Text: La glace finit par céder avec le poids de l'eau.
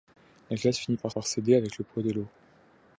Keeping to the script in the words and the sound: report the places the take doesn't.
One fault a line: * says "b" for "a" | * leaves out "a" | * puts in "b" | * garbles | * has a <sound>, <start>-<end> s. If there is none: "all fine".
* puts in "par"